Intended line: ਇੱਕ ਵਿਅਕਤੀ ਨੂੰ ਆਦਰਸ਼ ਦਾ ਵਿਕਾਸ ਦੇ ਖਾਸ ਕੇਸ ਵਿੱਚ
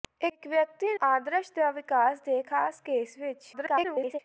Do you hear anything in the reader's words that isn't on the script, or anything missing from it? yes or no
yes